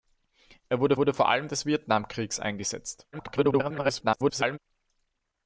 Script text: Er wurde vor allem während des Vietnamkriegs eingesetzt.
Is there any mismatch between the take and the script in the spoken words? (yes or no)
yes